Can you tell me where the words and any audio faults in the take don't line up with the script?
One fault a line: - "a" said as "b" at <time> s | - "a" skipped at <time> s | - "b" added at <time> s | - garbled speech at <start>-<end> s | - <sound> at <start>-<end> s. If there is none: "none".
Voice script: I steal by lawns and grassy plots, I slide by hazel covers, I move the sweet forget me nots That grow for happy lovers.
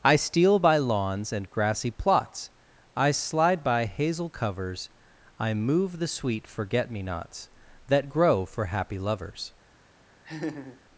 - laugh at 10.2-10.8 s